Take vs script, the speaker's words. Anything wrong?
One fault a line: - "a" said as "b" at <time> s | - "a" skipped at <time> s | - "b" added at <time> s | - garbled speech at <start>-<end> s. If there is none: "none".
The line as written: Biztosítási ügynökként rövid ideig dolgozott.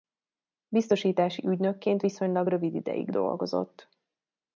- "viszonylag" added at 2.0 s